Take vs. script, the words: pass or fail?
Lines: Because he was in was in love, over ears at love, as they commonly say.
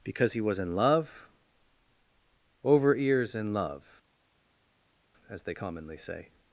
fail